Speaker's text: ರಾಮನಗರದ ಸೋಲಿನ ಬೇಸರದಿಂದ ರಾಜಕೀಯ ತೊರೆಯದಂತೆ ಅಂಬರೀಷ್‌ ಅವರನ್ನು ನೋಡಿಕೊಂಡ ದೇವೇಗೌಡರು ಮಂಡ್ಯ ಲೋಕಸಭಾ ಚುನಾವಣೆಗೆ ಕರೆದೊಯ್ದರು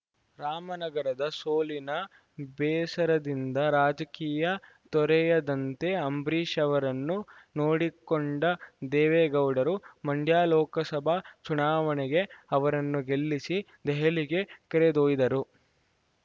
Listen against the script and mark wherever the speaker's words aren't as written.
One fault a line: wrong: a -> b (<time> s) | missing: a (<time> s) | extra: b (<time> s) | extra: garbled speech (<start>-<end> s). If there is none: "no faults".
extra: ಅವರನ್ನು ಗೆಲ್ಲಿಸಿ ದೆಹಲಿಗೆ (12.5 s)